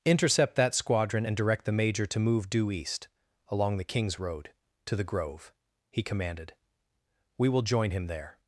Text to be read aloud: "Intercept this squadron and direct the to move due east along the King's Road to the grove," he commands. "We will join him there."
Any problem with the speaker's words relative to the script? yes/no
yes